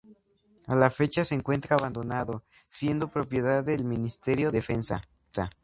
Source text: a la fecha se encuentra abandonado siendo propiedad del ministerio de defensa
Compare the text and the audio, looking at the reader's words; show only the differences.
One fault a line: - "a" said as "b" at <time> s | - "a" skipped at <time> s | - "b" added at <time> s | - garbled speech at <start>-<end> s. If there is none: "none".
- "de" skipped at 4.5 s